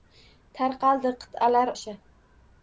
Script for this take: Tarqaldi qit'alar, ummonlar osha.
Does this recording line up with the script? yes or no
no